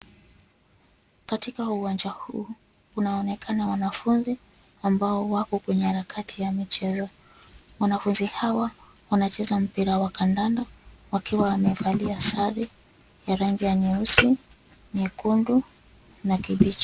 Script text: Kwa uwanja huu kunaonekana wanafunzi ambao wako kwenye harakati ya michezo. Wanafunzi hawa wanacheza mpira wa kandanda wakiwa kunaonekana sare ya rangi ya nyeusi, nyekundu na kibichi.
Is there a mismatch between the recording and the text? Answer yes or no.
yes